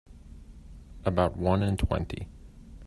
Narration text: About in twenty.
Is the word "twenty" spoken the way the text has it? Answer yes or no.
yes